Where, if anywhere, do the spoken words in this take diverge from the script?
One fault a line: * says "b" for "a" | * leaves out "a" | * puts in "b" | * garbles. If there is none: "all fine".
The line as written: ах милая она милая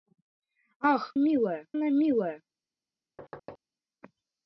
all fine